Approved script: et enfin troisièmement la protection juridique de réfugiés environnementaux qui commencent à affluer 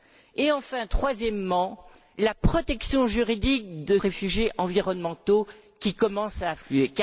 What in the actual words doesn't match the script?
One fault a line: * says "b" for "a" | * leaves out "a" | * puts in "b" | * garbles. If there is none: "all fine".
all fine